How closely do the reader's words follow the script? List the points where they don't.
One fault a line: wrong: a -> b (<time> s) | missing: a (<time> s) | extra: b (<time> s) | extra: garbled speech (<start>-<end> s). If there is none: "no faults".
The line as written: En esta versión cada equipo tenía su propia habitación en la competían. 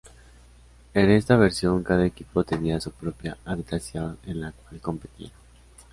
extra: cual (4.5 s)